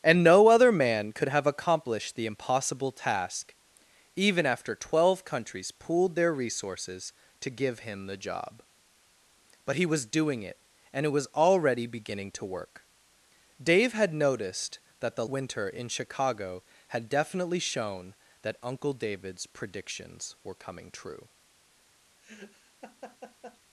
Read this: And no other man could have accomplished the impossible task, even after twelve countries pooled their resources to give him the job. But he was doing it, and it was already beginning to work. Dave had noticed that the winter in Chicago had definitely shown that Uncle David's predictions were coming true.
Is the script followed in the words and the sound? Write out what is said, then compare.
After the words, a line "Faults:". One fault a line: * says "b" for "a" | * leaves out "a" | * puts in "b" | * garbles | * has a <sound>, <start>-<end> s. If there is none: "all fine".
And no other man could have accomplished the impossible task, even after twelve countries pooled their resources to give him the job. But he was doing it, and it was already beginning to work. Dave had noticed that the winter in Chicago had definitely shown that Uncle David's predictions were coming true.
Faults:
* has a laugh, 22.2-23.6 s